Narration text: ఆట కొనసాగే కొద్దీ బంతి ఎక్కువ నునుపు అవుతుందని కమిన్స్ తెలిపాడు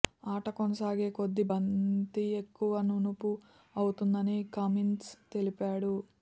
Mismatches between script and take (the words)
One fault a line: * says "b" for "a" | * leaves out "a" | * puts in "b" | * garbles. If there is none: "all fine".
all fine